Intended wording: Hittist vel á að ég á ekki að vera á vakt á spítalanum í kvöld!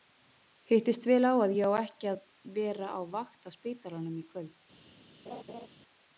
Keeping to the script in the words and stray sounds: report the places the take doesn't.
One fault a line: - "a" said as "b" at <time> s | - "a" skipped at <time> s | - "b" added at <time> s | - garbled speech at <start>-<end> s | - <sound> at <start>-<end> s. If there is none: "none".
- laugh at 5.3-5.7 s